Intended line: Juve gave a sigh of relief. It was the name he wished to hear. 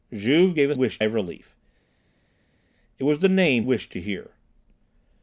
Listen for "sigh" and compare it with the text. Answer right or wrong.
wrong